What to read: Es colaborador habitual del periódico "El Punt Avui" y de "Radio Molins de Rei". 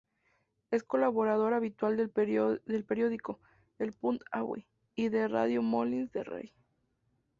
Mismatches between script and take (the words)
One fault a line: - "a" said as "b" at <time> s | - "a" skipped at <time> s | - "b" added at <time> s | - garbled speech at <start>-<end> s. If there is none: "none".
none